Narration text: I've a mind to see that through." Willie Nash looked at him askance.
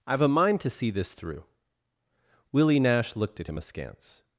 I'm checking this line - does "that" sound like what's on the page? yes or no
no